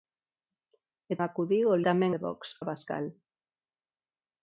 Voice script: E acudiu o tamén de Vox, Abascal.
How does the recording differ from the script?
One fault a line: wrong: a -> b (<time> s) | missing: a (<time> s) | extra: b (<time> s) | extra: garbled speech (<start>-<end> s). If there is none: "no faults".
no faults